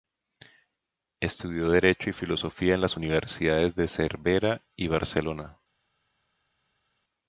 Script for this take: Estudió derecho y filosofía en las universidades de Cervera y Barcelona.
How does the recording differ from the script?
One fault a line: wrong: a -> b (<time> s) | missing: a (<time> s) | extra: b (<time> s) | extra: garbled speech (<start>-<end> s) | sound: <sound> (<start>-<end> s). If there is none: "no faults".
no faults